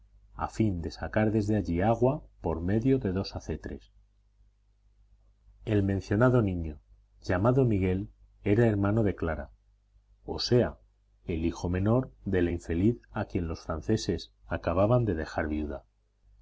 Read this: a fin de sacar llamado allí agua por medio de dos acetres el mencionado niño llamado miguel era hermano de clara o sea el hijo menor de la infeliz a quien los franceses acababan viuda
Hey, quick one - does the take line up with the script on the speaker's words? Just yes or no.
no